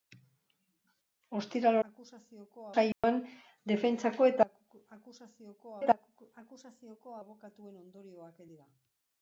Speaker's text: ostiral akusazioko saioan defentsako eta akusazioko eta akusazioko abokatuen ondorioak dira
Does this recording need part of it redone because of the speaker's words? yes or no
no